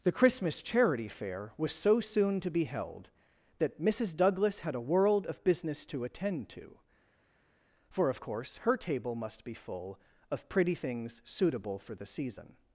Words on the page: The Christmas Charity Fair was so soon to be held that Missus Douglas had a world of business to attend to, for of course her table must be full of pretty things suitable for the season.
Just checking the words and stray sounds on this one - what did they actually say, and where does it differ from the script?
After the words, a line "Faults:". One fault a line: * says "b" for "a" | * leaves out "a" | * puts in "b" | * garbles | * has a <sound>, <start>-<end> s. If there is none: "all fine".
The Christmas Charity Fair was so soon to be held that Missus Douglas had a world of business to attend to, for of course her table must be full of pretty things suitable for the season.
Faults:
all fine